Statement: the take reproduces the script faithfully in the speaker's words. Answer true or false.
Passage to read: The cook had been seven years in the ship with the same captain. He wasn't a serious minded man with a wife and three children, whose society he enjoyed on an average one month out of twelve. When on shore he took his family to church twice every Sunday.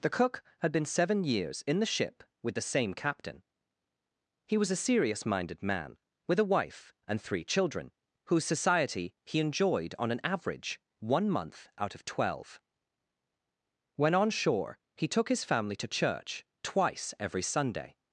false